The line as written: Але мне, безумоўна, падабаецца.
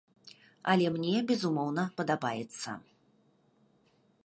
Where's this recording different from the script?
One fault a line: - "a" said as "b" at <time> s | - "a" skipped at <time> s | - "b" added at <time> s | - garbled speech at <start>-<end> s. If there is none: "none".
none